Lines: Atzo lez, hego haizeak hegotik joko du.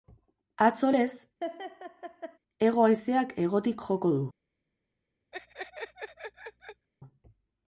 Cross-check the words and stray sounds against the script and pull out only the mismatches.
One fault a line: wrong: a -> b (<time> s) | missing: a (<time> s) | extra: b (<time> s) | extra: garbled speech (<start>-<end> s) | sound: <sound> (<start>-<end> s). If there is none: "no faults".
sound: laugh (1.4-2.4 s)
sound: laugh (5.3-6.9 s)